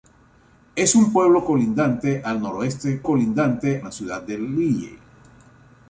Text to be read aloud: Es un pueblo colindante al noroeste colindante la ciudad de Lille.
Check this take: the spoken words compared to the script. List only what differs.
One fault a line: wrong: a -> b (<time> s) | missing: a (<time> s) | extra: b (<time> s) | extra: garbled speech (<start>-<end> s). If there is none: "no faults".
no faults